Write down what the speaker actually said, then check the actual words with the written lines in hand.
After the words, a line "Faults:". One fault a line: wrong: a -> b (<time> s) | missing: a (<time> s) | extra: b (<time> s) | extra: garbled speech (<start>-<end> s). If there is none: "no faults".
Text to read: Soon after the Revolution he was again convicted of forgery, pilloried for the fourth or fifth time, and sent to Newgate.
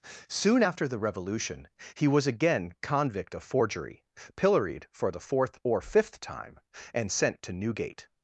Soon after the Revolution he was again convict of forgery, pilloried for the fourth or fifth time, and sent to Newgate.
Faults:
wrong: convicted -> convict (2.8 s)